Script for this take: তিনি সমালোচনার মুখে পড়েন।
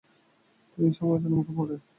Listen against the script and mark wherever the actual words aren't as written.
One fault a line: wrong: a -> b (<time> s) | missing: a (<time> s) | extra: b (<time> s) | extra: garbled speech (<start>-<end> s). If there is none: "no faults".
no faults